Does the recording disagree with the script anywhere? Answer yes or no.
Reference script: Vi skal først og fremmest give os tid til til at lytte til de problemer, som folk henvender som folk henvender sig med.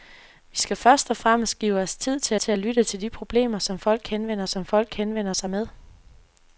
no